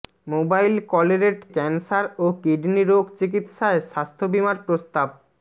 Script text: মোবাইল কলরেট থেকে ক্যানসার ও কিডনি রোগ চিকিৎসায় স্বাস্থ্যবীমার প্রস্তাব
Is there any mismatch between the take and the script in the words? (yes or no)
yes